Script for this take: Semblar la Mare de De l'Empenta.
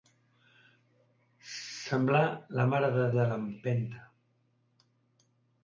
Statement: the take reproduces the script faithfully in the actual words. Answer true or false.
true